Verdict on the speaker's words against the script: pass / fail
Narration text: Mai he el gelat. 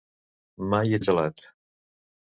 pass